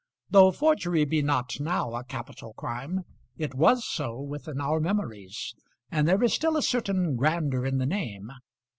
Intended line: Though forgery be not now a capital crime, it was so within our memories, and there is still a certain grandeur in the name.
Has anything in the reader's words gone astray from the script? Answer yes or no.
no